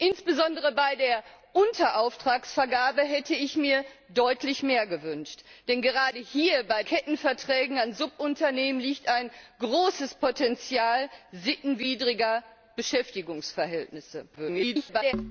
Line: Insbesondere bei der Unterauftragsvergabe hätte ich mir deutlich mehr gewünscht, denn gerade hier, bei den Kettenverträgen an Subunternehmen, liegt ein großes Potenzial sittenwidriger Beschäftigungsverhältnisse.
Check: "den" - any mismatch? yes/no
yes